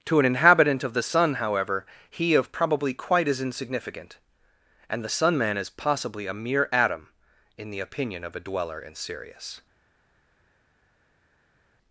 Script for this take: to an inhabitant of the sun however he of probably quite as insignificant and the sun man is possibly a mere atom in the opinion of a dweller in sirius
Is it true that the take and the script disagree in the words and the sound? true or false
false